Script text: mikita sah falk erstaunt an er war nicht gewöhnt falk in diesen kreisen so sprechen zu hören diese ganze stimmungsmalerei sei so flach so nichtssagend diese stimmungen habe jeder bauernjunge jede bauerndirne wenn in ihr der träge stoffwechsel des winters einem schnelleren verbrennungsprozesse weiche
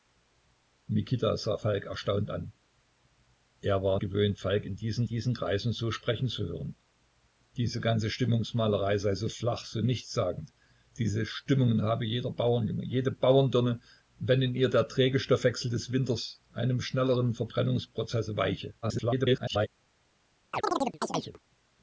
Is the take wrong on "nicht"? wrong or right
wrong